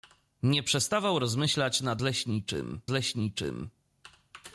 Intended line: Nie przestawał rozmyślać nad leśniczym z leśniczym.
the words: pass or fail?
pass